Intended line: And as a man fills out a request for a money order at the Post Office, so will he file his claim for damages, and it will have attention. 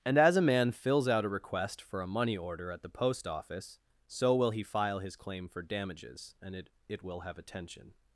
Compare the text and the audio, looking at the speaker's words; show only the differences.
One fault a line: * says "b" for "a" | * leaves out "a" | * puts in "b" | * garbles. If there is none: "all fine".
* puts in "it"